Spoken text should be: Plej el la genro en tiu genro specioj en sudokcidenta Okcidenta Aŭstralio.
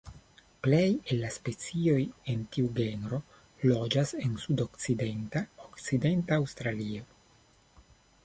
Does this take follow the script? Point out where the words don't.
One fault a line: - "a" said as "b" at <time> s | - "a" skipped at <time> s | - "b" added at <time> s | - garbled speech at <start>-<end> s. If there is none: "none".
- "genro" said as "specioj" at 1.4 s
- "specioj" said as "loĝas" at 3.7 s